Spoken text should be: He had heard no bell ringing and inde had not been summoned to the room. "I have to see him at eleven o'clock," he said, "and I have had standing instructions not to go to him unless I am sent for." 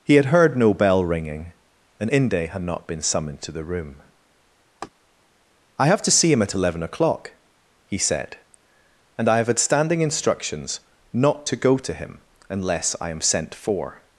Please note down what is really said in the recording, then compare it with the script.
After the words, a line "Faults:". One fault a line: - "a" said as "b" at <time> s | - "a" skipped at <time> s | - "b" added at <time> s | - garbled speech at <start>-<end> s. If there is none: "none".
He had heard no bell ringing and inde had not been summoned to the room. "I have to see him at eleven o'clock," he said, "and I have had standing instructions not to go to him unless I am sent for."
Faults:
none